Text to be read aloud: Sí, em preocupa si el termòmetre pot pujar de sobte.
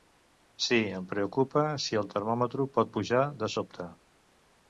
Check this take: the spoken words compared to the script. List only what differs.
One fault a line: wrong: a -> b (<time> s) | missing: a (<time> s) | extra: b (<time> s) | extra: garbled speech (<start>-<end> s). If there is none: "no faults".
no faults